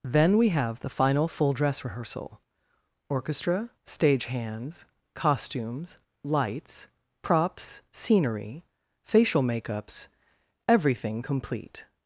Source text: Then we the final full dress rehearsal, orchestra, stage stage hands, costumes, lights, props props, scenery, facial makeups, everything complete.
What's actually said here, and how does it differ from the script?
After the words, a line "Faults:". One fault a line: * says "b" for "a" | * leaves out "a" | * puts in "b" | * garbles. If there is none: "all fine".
Then we have the final full dress rehearsal, orchestra, stage hands, costumes, lights, props, scenery, facial makeups, everything complete.
Faults:
* puts in "have"
* leaves out "stage"
* leaves out "props"